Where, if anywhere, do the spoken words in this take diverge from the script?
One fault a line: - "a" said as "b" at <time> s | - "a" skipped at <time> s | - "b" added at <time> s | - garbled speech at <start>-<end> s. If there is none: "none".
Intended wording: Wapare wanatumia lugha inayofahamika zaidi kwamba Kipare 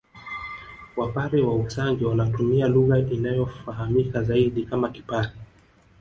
- "wa Usangi" added at 1.4 s
- "kwamba" said as "kama" at 4.6 s